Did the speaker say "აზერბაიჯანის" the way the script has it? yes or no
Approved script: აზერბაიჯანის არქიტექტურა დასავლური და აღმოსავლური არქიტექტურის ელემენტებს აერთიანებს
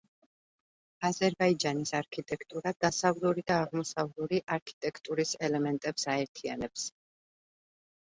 yes